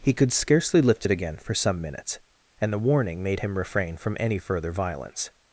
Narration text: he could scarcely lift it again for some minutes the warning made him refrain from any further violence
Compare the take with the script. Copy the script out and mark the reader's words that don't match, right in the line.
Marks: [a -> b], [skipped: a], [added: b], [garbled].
he could scarcely lift it again for some minutes [added: and] the warning made him refrain from any further violence